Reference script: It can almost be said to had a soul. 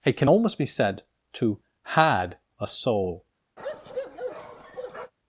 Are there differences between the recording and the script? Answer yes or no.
no